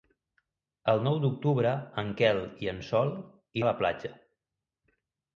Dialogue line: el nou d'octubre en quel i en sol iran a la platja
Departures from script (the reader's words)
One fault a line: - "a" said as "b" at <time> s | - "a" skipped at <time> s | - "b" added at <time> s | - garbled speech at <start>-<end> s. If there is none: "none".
- "iran" skipped at 3.1 s